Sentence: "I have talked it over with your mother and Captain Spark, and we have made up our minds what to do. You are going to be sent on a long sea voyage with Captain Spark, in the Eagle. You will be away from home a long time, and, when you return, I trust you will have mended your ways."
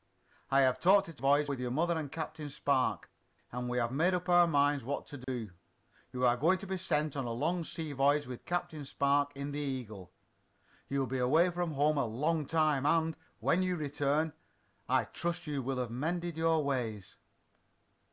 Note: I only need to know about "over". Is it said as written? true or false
false